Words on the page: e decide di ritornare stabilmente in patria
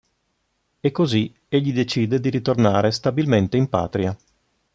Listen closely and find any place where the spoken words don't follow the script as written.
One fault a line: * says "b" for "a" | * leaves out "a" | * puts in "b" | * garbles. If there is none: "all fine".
* puts in "così egli"